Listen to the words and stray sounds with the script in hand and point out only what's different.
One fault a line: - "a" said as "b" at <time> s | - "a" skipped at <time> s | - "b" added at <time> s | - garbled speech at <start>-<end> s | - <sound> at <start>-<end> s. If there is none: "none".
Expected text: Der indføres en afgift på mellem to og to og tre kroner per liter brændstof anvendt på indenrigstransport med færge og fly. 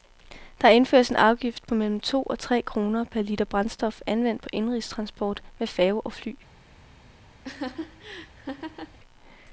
- "to og" skipped at 2.4 s
- laugh at 7.4-9.0 s